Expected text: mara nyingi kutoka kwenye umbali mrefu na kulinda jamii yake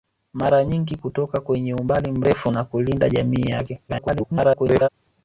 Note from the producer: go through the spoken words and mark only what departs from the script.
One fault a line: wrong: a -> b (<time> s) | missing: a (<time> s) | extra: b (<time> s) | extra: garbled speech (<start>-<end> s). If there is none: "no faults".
extra: garbled speech (3.9-4.9 s)